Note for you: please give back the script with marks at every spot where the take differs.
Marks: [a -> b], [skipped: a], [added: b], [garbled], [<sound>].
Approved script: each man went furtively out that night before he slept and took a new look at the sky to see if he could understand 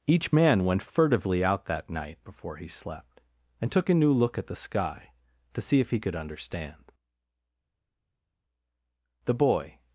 each man went furtively out that night before he slept and took a new look at the sky to see if he could understand [added: the boy]